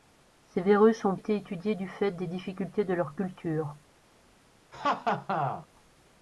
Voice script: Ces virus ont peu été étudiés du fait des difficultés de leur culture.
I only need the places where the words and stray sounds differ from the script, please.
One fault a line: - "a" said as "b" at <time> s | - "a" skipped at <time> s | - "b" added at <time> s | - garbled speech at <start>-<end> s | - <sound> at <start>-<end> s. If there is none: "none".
- "peu" skipped at 1.1 s
- laugh at 4.7-5.7 s